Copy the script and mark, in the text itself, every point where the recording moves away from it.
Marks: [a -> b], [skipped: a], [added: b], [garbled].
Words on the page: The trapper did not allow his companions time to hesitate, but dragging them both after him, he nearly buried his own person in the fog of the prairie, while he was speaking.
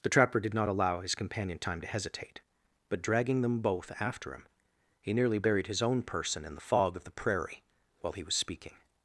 The trapper did not allow his [companions -> companion] time to hesitate, but dragging them both after him, he nearly buried his own person in the fog of the prairie, while he was speaking.